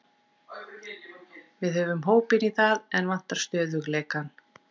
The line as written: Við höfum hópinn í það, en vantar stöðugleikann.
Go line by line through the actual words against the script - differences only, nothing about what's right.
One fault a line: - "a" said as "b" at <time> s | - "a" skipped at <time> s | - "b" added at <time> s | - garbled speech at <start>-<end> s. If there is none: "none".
none